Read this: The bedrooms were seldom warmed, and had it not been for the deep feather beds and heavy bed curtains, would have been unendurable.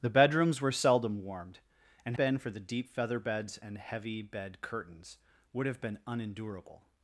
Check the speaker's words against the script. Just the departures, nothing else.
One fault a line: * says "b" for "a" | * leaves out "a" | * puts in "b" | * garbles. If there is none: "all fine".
* leaves out "had it not"